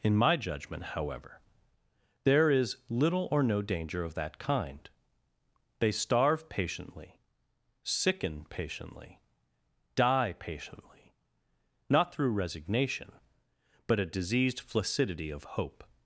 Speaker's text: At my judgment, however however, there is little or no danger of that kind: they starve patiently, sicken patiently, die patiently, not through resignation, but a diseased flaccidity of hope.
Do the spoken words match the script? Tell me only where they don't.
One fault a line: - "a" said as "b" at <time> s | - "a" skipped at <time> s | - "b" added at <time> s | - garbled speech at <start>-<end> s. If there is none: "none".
- "At" said as "In" at 0.0 s
- "however" skipped at 1.4 s